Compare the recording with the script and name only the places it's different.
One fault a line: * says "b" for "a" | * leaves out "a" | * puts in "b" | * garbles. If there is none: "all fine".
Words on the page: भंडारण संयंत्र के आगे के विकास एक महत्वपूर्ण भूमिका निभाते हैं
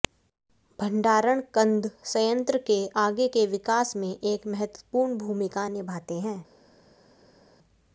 * puts in "कंद"
* puts in "में"